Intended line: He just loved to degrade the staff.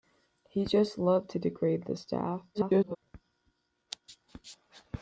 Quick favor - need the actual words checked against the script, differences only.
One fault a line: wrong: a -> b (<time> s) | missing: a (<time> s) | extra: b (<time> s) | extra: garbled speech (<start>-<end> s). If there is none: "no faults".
extra: garbled speech (2.5-3.0 s)